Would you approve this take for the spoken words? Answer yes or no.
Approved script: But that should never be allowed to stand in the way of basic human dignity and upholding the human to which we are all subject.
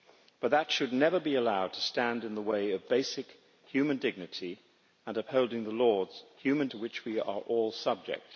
yes